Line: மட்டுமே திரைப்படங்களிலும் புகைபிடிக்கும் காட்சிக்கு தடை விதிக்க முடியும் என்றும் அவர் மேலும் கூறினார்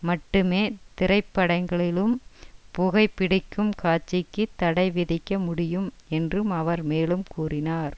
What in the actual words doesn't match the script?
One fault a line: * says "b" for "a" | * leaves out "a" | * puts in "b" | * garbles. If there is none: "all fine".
all fine